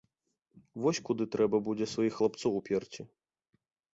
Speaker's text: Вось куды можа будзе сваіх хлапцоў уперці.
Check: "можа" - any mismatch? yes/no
yes